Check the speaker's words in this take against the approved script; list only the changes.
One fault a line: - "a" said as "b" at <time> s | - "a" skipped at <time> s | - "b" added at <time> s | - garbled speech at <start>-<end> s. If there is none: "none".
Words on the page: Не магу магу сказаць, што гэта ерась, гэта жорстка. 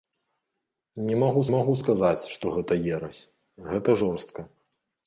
none